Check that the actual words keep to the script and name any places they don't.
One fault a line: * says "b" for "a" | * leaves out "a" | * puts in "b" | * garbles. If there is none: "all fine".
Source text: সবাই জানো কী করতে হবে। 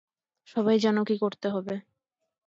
all fine